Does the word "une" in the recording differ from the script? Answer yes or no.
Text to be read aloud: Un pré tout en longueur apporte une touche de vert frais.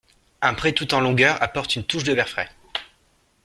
no